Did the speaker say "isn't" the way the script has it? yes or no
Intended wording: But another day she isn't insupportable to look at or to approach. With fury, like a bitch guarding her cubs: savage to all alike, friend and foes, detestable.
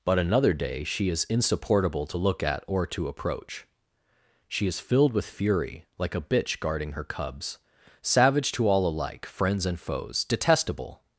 no